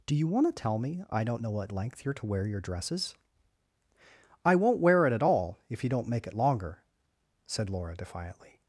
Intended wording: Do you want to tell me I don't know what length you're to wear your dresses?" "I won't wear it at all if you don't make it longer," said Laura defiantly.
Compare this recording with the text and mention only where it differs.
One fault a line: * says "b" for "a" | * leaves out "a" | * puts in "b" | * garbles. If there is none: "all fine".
all fine